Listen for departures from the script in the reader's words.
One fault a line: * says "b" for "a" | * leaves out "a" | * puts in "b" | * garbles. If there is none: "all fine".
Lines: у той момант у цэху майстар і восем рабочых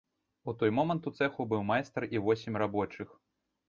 * puts in "быў"